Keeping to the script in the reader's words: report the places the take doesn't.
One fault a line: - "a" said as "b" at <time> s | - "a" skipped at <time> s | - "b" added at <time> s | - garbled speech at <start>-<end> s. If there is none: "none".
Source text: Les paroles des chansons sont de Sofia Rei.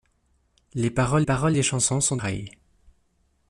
- "paroles" added at 1.2 s
- "Sofia" skipped at 2.2 s